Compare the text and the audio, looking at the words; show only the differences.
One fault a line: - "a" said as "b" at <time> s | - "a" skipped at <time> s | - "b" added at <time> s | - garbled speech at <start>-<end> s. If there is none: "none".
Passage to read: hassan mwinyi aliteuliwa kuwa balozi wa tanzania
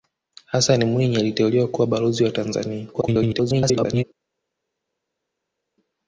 - garbled speech at 2.9-4.0 s